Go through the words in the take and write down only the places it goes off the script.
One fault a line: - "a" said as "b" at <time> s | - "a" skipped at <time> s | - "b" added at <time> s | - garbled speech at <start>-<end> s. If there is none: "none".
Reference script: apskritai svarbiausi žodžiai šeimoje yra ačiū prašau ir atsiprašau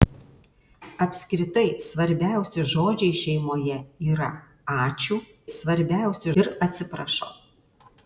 - "prašau" said as "svarbiausi" at 5.6 s